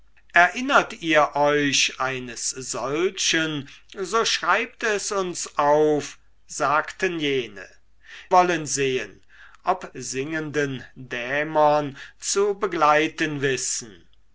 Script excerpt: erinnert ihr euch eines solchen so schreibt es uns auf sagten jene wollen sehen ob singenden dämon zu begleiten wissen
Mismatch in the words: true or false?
false